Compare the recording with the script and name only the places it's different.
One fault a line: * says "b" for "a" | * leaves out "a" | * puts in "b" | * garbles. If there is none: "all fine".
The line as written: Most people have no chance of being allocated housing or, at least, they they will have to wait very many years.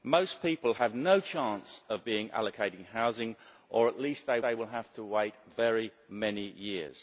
all fine